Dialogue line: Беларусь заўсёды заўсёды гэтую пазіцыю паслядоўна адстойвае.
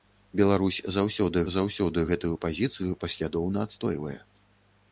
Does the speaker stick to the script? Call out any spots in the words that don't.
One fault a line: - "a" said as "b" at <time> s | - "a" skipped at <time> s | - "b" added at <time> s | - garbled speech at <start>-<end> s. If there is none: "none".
none